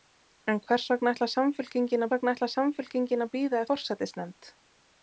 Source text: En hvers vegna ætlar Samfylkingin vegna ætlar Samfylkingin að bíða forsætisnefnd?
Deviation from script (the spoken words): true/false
false